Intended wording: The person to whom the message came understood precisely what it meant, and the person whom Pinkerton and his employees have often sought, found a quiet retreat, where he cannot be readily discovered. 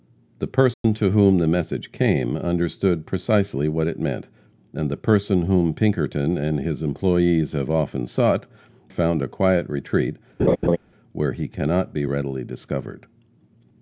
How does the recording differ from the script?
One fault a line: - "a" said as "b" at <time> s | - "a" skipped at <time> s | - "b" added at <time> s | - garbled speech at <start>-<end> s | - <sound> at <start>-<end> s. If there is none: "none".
- dropout at 0.7-0.8 s
- laugh at 10.4-10.8 s